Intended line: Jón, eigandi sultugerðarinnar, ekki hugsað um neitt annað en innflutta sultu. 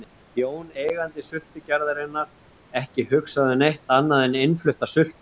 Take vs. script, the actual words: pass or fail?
pass